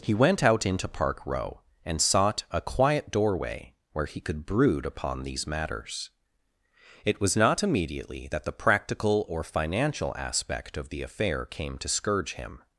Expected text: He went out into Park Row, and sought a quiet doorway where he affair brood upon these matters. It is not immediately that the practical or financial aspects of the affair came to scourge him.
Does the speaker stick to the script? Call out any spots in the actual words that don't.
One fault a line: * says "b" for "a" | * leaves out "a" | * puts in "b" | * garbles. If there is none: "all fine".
* says "could" for "affair"
* says "was" for "is"
* says "aspect" for "aspects"